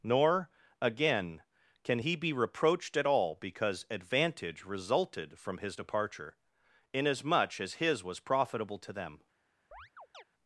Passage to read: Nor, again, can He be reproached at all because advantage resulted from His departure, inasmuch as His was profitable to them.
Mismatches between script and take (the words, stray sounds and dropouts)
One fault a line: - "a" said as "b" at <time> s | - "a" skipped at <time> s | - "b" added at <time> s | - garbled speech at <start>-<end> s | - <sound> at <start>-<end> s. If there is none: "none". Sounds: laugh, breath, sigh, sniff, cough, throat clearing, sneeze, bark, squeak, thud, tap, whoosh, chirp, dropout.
- chirp at 9.7-10.2 s